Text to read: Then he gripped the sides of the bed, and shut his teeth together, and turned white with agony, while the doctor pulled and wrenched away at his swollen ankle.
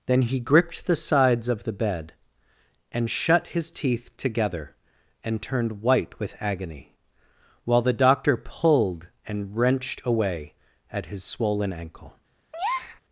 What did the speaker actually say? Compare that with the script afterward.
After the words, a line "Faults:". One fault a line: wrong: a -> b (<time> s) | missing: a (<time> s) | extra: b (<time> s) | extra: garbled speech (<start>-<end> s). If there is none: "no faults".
Then he gripped the sides of the bed, and shut his teeth together, and turned white with agony, while the doctor pulled and wrenched away at his swollen ankle.
Faults:
no faults